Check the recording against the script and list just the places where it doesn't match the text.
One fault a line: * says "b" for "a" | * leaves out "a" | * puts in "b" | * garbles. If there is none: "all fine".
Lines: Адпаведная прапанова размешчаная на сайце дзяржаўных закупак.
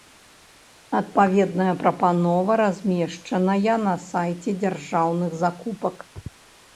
all fine